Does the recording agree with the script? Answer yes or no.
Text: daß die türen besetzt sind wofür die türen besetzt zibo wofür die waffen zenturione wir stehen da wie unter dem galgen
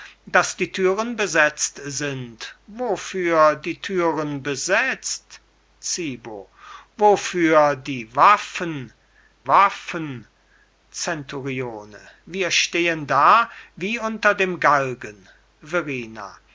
no